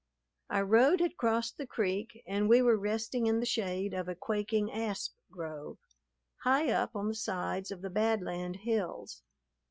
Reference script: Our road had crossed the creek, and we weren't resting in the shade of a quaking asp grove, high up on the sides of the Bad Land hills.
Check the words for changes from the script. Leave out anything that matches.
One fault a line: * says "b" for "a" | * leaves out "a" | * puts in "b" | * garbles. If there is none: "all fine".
* says "were" for "weren't"